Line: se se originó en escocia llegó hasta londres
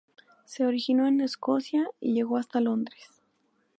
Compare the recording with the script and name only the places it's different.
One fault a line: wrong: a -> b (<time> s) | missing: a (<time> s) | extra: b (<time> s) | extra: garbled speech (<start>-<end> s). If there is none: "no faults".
missing: se (0.7 s)
extra: y (2.0 s)